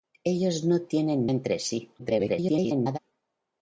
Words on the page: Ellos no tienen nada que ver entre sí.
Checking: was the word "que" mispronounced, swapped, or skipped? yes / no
yes